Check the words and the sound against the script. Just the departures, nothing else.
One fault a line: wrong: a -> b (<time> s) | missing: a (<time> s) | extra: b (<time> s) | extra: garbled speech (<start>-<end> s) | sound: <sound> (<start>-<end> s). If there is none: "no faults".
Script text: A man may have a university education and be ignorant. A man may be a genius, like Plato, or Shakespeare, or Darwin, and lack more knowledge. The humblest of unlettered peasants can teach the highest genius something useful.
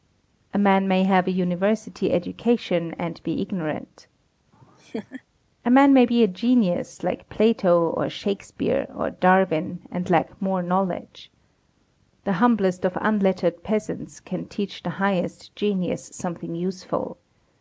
sound: laugh (4.5-5.2 s)